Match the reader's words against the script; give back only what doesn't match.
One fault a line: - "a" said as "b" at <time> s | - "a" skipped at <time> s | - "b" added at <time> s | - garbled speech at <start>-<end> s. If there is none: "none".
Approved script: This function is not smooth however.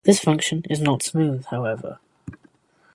none